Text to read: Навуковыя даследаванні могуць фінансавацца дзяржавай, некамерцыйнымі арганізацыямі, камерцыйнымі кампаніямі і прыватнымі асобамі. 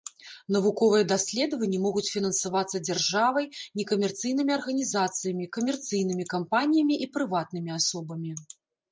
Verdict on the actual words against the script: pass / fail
pass